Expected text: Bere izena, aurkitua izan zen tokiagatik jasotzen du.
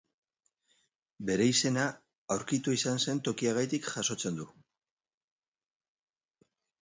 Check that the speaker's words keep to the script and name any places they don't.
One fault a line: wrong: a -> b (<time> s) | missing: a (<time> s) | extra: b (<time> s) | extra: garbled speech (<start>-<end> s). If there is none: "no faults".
no faults